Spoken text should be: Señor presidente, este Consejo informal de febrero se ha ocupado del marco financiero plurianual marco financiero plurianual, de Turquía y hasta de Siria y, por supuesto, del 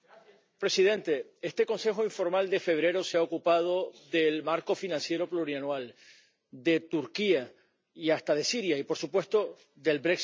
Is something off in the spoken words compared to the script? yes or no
yes